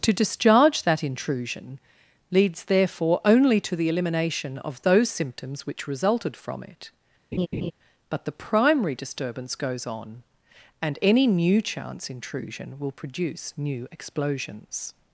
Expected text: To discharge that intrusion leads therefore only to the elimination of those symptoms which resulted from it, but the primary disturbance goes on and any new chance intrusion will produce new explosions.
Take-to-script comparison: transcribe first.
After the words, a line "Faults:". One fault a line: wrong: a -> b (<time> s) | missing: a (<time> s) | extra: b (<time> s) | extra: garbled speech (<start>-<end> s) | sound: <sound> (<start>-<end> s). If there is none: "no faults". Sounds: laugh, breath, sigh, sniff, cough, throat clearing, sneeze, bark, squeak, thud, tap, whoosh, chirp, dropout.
To discharge that intrusion leads therefore only to the elimination of those symptoms which resulted from it, but the primary disturbance goes on and any new chance intrusion will produce new explosions.
Faults:
sound: laugh (7.3-7.7 s)